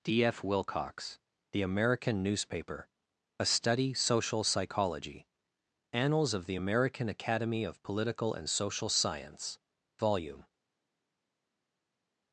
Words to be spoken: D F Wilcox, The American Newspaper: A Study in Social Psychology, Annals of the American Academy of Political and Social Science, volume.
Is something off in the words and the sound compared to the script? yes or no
yes